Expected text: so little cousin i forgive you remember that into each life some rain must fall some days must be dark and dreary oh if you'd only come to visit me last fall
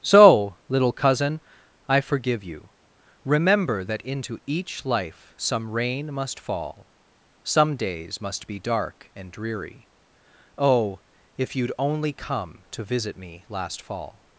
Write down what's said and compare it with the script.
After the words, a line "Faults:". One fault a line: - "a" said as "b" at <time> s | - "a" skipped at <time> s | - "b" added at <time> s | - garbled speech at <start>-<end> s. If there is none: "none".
so little cousin i forgive you remember that into each life some rain must fall some days must be dark and dreary oh if you'd only come to visit me last fall
Faults:
none